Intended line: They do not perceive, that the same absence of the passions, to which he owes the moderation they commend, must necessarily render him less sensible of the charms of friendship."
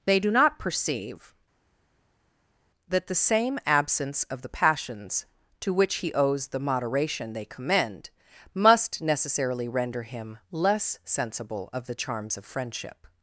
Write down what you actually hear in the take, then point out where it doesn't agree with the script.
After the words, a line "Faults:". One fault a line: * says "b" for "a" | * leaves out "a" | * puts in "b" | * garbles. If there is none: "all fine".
They do not perceive, that the same absence of the passions, to which he owes the moderation they commend, must necessarily render him less sensible of the charms of friendship."
Faults:
all fine